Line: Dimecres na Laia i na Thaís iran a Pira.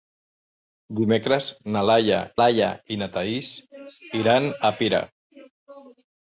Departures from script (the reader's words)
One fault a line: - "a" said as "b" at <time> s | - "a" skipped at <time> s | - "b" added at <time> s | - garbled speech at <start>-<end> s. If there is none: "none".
- "Laia" added at 2.4 s